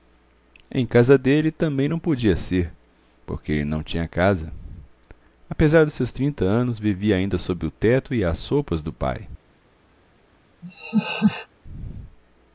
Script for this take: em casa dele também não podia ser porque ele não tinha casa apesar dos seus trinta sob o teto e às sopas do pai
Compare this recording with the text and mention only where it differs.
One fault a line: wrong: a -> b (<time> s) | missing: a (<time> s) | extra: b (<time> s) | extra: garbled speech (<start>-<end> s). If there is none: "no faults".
extra: anos vivia ainda (6.5 s)